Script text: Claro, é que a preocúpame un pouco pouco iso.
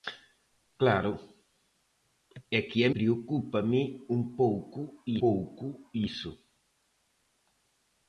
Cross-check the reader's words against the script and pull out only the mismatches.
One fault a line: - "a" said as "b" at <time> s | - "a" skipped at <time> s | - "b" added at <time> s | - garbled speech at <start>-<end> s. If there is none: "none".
none